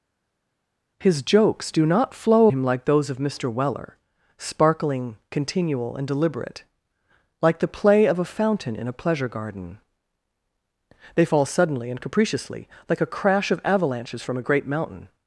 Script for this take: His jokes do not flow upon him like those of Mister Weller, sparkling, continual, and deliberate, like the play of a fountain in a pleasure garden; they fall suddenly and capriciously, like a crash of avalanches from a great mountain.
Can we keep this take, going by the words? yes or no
no